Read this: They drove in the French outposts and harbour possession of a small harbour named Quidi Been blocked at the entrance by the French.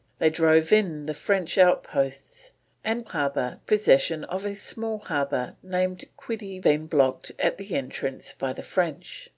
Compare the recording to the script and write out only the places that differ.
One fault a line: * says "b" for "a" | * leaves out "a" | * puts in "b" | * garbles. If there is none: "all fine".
all fine